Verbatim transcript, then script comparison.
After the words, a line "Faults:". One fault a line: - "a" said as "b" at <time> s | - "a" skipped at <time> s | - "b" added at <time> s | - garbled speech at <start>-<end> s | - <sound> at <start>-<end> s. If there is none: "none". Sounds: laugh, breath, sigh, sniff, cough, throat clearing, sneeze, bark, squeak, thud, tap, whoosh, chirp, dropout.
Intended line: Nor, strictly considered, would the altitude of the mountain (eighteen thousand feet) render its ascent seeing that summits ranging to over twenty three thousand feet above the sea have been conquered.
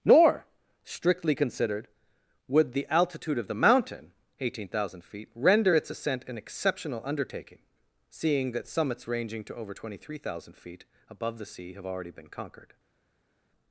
Nor, strictly considered, would the altitude of the mountain (eighteen thousand feet) render its ascent an exceptional undertaking, seeing that summits ranging to over twenty three thousand feet above the sea have already been conquered.
Faults:
- "an exceptional undertaking" added at 6.3 s
- "already" added at 11.9 s